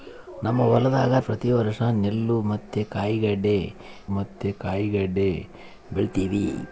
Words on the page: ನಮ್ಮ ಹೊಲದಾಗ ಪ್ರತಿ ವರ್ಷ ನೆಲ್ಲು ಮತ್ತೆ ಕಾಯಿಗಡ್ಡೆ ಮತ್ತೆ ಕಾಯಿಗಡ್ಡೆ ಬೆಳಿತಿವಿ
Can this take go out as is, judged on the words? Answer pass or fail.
pass